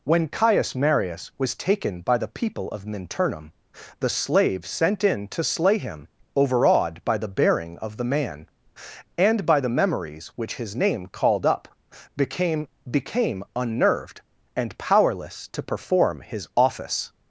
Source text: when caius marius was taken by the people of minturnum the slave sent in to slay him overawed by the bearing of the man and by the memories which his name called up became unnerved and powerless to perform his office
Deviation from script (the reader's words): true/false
true